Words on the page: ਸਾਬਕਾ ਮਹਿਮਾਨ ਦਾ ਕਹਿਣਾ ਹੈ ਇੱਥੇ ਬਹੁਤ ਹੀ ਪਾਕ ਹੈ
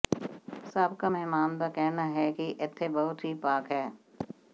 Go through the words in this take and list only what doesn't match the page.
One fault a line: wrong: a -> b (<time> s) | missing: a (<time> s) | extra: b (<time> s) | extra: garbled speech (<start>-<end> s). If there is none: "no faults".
extra: ਕਿ (2.3 s)